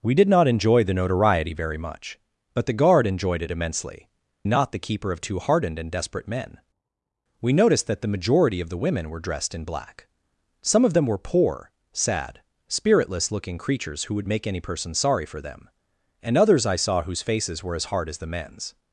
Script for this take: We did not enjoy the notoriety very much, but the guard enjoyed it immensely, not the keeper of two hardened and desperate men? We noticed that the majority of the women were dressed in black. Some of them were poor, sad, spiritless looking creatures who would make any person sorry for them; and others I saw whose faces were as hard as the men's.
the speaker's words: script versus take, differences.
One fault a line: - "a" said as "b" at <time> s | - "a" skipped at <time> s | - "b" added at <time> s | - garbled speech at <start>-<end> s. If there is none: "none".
none